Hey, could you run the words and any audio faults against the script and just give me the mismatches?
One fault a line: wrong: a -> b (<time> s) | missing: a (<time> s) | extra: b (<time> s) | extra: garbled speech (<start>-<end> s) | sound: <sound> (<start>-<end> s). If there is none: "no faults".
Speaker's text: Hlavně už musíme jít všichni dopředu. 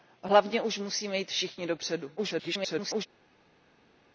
extra: garbled speech (2.2-3.1 s)